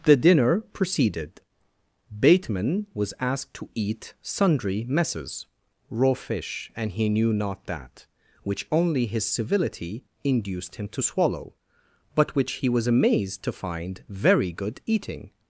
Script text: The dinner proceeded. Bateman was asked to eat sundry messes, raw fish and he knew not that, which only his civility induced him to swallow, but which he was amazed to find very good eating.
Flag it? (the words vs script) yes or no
no